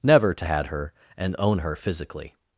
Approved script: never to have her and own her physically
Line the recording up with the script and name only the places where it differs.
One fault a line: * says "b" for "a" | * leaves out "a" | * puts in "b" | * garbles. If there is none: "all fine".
* says "had" for "have"